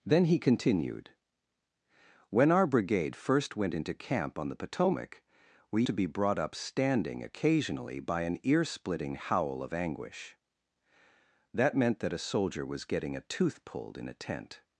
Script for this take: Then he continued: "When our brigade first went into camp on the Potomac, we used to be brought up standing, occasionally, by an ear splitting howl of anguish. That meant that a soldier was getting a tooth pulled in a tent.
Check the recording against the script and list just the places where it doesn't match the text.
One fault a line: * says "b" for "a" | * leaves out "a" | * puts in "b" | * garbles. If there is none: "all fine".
* leaves out "used"